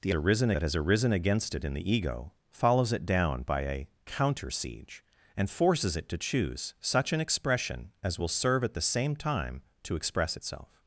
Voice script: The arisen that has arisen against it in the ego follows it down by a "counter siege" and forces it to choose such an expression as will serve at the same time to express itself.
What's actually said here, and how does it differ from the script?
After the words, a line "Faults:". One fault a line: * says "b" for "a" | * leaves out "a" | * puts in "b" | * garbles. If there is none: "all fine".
The arisen that has arisen against it in the ego follows it down by a "counter siege" and forces it to choose such an expression as will serve at the same time to express itself.
Faults:
all fine